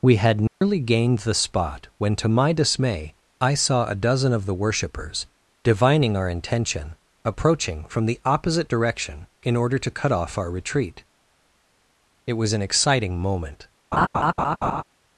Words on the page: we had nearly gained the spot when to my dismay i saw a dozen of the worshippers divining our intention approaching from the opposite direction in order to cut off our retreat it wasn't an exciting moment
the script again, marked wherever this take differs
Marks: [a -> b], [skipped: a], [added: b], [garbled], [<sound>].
we had nearly [dropout] gained the spot when to my dismay i saw a dozen of the worshippers divining our intention approaching from the opposite direction in order to cut off our retreat it [wasn't -> was] an exciting moment [laugh]